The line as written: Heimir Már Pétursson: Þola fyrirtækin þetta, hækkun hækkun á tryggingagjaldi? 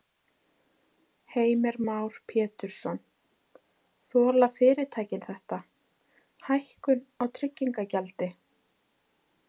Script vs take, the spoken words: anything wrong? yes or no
yes